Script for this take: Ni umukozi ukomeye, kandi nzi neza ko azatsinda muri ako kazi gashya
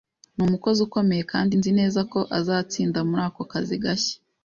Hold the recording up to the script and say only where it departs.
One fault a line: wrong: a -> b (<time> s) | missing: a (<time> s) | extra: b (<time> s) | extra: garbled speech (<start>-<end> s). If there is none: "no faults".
no faults